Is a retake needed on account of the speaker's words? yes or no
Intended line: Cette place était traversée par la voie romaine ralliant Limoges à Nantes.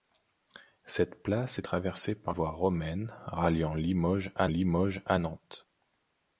yes